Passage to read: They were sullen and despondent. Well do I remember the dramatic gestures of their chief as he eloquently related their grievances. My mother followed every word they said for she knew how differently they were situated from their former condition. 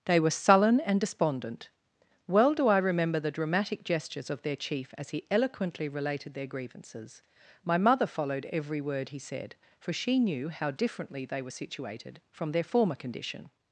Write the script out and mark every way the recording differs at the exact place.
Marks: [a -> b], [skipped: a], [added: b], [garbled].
They were sullen and despondent. Well do I remember the dramatic gestures of their chief as he eloquently related their grievances. My mother followed every word [they -> he] said for she knew how differently they were situated from their former condition.